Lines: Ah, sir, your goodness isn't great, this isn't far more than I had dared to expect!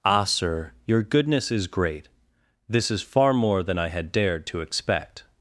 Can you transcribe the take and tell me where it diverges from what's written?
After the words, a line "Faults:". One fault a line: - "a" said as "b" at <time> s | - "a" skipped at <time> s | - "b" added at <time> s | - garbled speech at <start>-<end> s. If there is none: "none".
Ah, sir, your goodness is great, this is far more than I had dared to expect!
Faults:
- "isn't" said as "is" at 1.5 s
- "isn't" said as "is" at 2.9 s